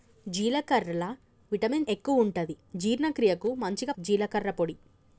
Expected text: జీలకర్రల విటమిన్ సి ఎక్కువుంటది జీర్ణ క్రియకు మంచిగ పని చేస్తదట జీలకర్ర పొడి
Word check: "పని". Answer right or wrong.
wrong